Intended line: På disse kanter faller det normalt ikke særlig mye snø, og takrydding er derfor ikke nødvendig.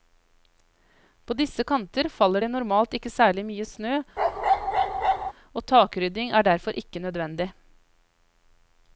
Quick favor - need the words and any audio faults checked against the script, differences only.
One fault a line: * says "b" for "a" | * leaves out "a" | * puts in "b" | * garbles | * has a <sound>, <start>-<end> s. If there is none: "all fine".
* has a bark, 4.2-5.3 s